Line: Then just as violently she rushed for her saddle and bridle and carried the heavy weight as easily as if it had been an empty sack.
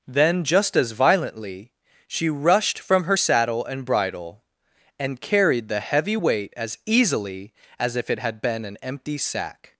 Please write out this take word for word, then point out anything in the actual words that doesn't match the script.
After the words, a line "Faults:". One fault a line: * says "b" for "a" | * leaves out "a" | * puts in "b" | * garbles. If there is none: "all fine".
Then just as violently she rushed from her saddle and bridle and carried the heavy weight as easily as if it had been an empty sack.
Faults:
* says "from" for "for"